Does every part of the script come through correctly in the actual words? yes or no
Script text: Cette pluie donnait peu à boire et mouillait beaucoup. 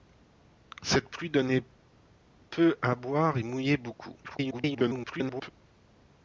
no